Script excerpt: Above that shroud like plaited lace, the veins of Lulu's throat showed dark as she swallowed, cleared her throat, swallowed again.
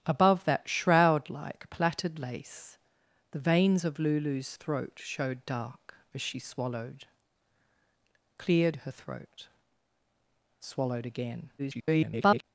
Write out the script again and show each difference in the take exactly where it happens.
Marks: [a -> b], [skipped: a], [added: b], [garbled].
Above that shroud like plaited lace, the veins of Lulu's throat showed dark as she swallowed, cleared her throat, swallowed again. [garbled]